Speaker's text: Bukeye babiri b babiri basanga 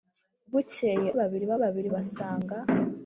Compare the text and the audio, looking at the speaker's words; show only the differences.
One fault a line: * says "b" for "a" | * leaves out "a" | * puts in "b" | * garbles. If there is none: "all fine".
all fine